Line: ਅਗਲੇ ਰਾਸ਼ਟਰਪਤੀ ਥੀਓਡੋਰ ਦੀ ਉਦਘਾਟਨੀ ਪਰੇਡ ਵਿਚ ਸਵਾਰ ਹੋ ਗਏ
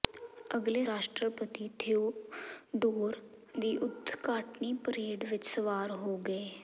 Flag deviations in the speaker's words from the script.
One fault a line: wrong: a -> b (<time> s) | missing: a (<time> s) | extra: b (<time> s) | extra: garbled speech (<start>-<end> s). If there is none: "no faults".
no faults